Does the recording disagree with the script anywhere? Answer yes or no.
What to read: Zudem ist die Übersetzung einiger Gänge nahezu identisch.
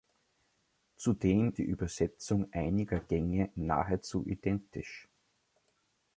yes